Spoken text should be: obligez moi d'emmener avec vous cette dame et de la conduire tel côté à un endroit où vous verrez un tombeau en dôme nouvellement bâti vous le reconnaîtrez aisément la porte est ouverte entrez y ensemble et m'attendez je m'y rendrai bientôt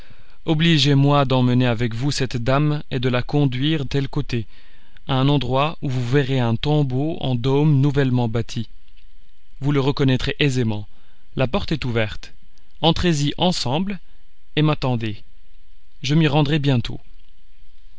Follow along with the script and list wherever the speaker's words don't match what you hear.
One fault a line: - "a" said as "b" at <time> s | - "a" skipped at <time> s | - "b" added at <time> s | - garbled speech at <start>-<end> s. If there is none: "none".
none